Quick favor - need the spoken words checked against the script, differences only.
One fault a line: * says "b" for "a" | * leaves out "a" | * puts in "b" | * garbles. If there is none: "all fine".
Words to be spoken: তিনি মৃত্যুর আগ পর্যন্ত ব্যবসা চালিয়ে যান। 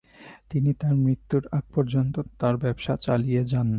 * puts in "তার"
* puts in "তার"